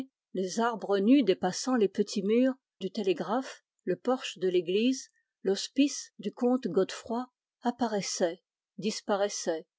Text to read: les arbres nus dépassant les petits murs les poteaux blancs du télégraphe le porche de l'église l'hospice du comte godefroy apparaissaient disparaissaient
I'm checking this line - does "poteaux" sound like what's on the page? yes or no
no